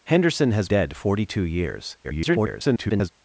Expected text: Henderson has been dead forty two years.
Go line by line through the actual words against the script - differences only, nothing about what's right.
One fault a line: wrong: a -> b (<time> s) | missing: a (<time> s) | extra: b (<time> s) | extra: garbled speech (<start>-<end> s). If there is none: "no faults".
missing: been (0.7 s)
extra: garbled speech (2.0-3.1 s)